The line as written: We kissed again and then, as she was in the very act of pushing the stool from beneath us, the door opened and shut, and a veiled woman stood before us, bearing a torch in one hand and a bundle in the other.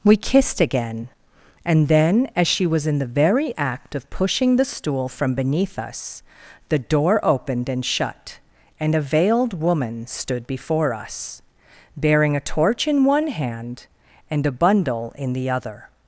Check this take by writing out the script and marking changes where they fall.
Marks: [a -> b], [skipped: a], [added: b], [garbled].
We kissed again and then, as she was in the very act of pushing the stool from beneath us, the door opened and shut, and a veiled woman stood before us, bearing a torch in one hand and a bundle in the other.